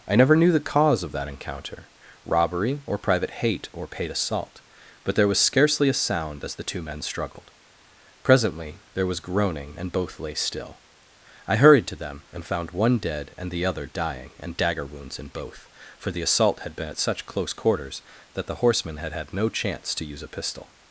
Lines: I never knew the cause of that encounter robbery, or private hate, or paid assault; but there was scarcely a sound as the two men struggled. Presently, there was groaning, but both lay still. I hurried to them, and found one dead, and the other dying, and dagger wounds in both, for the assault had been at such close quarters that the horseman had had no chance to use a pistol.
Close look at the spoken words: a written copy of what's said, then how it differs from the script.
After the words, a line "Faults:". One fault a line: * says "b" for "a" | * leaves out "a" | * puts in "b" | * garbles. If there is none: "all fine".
I never knew the cause of that encounter robbery, or private hate, or paid assault; but there was scarcely a sound as the two men struggled. Presently, there was groaning, and both lay still. I hurried to them, and found one dead, and the other dying, and dagger wounds in both, for the assault had been at such close quarters that the horseman had had no chance to use a pistol.
Faults:
* says "and" for "but"